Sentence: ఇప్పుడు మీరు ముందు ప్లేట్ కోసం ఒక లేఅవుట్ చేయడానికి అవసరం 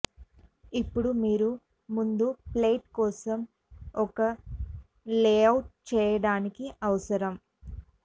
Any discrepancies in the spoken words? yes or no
no